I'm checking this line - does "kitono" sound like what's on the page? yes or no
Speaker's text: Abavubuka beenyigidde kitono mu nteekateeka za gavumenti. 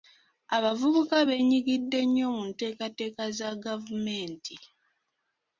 no